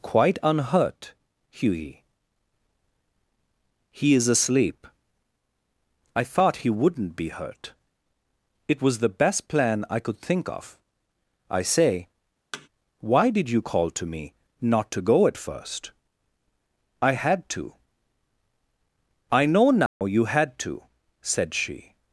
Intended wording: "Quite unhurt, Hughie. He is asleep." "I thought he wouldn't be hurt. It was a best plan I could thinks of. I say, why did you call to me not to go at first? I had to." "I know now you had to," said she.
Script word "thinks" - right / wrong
wrong